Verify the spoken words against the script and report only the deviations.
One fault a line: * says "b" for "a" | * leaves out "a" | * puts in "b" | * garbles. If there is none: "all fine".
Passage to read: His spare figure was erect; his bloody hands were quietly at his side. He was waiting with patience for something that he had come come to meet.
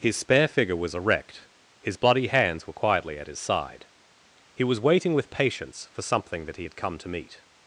* leaves out "come"